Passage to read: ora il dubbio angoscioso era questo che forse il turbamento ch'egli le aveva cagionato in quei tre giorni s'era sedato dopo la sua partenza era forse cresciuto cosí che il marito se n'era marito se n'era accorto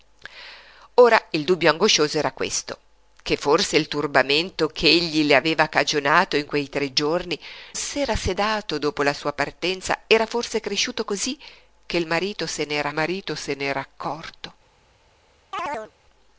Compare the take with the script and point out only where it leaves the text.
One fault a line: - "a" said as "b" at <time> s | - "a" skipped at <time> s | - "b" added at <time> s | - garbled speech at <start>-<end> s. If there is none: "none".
none